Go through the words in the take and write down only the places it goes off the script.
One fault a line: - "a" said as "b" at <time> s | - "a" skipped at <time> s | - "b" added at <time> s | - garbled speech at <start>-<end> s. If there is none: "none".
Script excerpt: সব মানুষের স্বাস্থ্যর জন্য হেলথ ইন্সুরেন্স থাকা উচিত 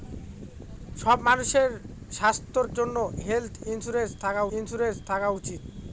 - "ইন্সুরেন্স থাকা" added at 4.5 s